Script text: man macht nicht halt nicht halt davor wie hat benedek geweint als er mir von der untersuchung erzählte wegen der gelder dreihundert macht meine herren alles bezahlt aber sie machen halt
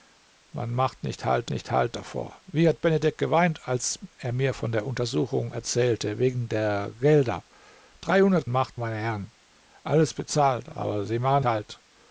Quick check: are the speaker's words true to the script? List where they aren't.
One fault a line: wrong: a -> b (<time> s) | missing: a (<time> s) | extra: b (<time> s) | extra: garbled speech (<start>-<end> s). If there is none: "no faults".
no faults